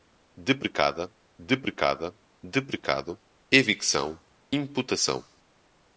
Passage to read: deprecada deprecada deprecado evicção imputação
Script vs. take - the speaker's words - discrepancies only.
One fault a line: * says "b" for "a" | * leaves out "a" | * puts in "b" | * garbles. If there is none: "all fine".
all fine